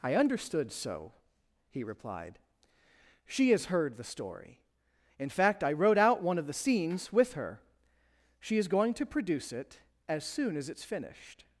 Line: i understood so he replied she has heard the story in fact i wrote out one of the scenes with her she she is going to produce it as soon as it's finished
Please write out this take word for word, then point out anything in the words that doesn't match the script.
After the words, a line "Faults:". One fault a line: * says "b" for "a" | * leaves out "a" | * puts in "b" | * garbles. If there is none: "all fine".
i understood so he replied she has heard the story in fact i wrote out one of the scenes with her she is going to produce it as soon as it's finished
Faults:
* leaves out "she"